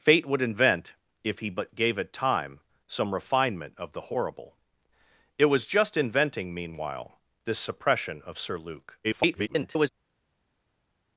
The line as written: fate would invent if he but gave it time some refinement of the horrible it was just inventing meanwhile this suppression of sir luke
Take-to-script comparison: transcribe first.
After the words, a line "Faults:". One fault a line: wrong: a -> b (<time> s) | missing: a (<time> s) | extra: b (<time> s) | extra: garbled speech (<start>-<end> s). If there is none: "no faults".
fate would invent if he but gave it time some refinement of the horrible it was just inventing meanwhile this suppression of sir luke [garbled]
Faults:
extra: garbled speech (9.0-9.9 s)